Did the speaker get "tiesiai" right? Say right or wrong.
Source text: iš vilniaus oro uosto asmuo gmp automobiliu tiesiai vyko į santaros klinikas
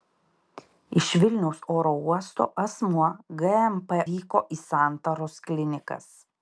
wrong